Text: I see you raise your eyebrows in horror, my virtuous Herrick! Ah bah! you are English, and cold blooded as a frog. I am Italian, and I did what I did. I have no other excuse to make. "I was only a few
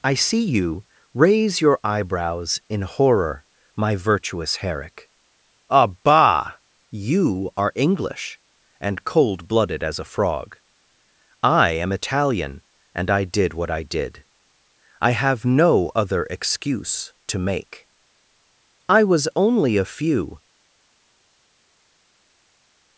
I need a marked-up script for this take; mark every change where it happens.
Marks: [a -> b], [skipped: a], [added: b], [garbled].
I see you raise your eyebrows in horror, my virtuous Herrick! Ah bah! you are English, and cold blooded as a frog. I am Italian, and I did what I did. I have no other excuse to make. "I was only a few